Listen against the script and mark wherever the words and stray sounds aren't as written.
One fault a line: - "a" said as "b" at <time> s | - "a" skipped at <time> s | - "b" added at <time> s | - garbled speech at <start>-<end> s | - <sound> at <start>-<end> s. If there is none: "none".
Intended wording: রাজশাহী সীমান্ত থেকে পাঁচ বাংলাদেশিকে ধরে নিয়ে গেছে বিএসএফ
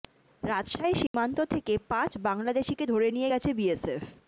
- dropout at 1.1-1.1 s